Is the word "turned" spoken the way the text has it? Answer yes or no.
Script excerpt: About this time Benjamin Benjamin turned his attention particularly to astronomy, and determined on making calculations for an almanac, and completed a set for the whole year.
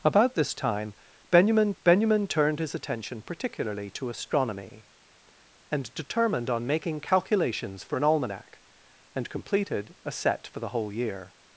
yes